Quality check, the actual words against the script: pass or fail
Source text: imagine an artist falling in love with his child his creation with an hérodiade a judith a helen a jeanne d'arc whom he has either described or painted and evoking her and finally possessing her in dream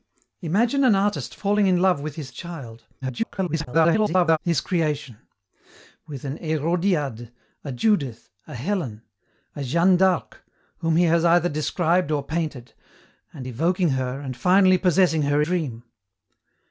fail